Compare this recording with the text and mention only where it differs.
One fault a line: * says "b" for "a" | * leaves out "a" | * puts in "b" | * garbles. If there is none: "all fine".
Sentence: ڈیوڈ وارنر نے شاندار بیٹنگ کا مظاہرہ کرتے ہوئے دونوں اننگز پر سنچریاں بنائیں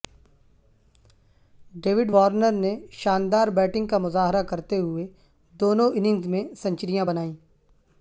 * says "میں" for "پر"